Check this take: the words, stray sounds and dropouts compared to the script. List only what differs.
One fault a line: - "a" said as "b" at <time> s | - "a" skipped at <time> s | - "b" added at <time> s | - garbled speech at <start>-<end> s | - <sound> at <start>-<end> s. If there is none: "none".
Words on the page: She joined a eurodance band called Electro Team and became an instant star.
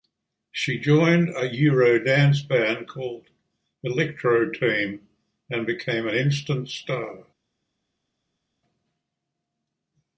none